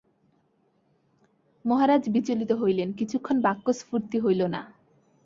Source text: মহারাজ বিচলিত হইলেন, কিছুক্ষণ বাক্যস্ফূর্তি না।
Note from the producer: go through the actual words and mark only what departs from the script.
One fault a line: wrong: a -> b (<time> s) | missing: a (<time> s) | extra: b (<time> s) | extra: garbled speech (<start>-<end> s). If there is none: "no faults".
extra: হইল (4.2 s)